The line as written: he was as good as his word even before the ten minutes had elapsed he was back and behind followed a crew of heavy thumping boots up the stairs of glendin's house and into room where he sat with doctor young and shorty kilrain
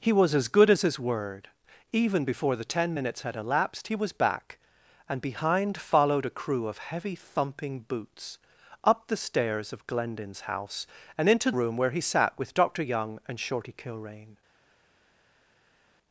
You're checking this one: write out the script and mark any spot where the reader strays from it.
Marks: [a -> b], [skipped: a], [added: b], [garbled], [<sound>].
he was as good as his word even before the ten minutes had elapsed he was back and behind followed a crew of heavy thumping boots up the stairs of glendin's house and into room where he sat with doctor young and shorty kilrain